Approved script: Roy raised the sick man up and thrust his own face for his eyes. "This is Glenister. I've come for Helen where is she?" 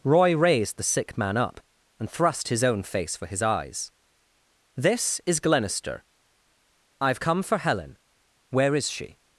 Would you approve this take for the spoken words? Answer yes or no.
yes